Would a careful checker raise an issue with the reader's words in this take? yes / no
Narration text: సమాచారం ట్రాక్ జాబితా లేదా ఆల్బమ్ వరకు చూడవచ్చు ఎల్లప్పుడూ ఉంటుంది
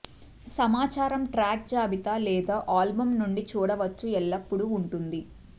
yes